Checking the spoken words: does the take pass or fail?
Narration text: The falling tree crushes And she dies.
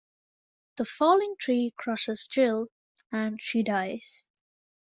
fail